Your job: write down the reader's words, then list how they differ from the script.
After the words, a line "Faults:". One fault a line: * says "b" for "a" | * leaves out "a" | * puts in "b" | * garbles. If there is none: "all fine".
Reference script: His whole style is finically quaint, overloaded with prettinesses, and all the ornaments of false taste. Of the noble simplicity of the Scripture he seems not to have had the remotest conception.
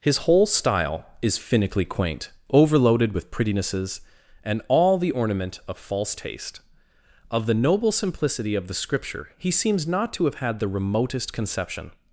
His whole style is finically quaint, overloaded with prettinesses, and all the ornament of false taste. Of the noble simplicity of the Scripture he seems not to have had the remotest conception.
Faults:
* says "ornament" for "ornaments"